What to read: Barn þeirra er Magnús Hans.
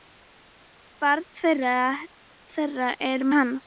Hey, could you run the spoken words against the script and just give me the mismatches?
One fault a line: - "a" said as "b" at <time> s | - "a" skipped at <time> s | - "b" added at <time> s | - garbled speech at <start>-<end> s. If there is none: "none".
- "Magnús" skipped at 3.3 s